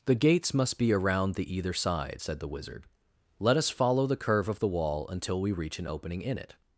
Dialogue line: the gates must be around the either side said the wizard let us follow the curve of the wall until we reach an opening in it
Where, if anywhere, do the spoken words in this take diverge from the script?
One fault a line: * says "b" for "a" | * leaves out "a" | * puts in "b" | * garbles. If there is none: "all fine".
all fine